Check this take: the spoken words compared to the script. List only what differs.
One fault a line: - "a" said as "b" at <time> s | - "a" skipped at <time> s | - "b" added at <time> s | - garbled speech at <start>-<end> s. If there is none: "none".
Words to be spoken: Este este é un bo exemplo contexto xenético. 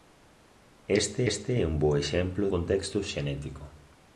none